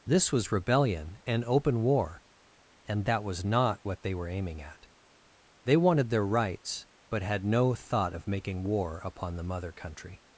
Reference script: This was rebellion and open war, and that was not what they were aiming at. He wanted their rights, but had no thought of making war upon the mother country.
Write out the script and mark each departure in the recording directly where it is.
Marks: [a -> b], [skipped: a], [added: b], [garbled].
This was rebellion and open war, and that was not what they were aiming at. [He -> They] wanted their rights, but had no thought of making war upon the mother country.